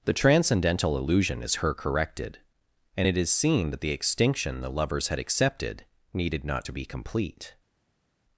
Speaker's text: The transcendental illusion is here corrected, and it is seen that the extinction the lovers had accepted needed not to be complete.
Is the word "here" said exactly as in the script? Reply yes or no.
no